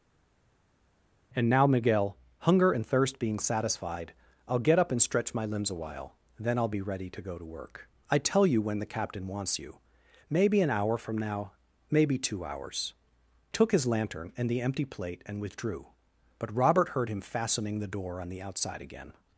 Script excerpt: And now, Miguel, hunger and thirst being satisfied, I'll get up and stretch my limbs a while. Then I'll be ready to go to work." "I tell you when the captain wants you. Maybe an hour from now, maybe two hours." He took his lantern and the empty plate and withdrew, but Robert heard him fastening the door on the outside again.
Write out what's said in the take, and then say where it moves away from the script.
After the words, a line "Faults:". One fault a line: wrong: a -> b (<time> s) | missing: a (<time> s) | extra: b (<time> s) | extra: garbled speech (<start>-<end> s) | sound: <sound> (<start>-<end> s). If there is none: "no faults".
And now, Miguel, hunger and thirst being satisfied, I'll get up and stretch my limbs a while. Then I'll be ready to go to work." "I tell you when the captain wants you. Maybe an hour from now, maybe two hours." Took his lantern and the empty plate and withdrew, but Robert heard him fastening the door on the outside again.
Faults:
missing: He (12.9 s)